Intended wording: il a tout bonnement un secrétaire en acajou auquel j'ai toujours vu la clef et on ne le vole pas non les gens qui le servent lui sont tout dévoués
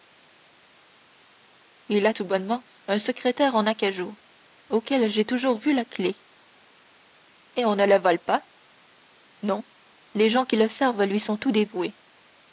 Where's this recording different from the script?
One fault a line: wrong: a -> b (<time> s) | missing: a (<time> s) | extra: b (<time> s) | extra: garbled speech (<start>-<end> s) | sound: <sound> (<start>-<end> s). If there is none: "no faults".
no faults